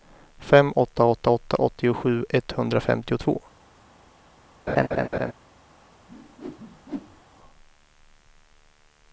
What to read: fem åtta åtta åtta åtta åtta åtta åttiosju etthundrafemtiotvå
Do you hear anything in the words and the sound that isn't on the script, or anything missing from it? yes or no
yes